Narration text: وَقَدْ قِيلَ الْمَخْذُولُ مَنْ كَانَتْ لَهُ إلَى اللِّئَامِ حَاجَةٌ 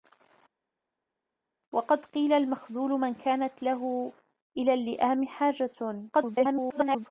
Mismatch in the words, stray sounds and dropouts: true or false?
true